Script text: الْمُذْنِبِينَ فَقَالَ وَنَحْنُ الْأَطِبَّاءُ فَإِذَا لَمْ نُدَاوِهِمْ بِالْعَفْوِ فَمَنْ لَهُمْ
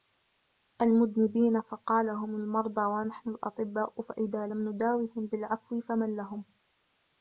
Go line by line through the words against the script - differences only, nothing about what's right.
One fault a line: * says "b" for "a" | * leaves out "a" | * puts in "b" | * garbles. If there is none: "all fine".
* puts in "هُمْ الْمَرْضَى"